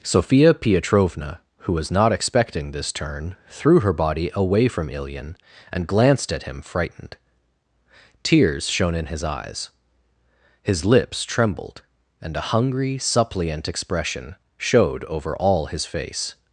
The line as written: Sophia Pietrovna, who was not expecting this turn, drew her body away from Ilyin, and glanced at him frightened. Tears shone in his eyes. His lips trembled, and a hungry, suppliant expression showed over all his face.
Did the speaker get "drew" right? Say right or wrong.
wrong